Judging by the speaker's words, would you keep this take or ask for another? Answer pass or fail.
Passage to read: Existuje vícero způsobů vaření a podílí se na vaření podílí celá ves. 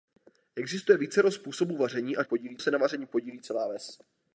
pass